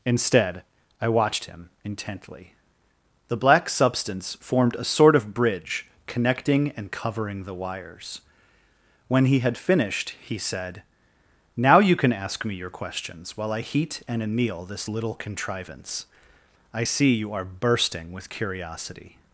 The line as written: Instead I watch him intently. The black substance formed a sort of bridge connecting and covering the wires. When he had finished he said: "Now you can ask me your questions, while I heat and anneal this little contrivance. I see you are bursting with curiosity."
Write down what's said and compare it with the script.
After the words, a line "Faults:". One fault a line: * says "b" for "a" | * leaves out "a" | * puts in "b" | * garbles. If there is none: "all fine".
Instead I watched him intently. The black substance formed a sort of bridge connecting and covering the wires. When he had finished he said: "Now you can ask me your questions, while I heat and anneal this little contrivance. I see you are bursting with curiosity."
Faults:
* says "watched" for "watch"